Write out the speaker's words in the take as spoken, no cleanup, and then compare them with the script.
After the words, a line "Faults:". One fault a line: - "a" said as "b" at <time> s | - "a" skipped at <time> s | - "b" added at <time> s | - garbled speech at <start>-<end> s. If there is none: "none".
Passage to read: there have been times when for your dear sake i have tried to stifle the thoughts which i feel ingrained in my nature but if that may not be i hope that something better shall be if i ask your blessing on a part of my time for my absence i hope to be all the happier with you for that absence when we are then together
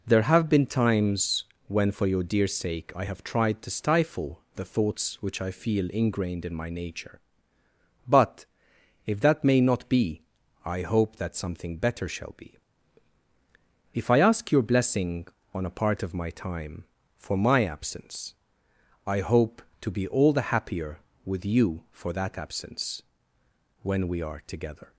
there have been times when for your dear sake i have tried to stifle the thoughts which i feel ingrained in my nature but if that may not be i hope that something better shall be if i ask your blessing on a part of my time for my absence i hope to be all the happier with you for that absence when we are together
Faults:
- "then" skipped at 24.4 s